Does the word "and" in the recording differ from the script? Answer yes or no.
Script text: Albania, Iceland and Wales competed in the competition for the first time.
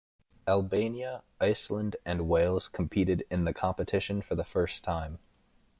no